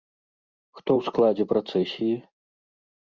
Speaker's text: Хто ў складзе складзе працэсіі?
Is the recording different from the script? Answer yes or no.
yes